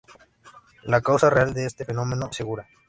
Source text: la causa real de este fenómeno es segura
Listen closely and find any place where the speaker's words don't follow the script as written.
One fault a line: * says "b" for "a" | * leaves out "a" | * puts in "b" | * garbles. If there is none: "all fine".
all fine